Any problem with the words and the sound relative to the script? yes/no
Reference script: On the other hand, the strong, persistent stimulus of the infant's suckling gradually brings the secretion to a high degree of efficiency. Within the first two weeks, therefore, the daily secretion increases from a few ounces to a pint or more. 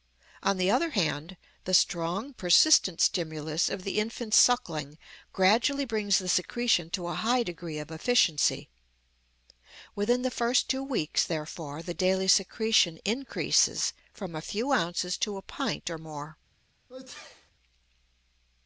yes